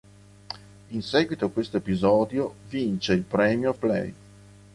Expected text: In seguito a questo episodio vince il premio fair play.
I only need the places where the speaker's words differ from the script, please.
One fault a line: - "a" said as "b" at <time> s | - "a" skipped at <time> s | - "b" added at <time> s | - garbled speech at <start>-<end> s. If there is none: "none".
- "fair" skipped at 3.7 s